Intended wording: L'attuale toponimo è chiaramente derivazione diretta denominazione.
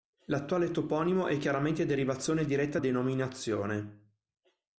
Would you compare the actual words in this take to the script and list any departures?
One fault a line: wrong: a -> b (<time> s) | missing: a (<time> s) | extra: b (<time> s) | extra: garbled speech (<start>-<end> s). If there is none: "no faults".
no faults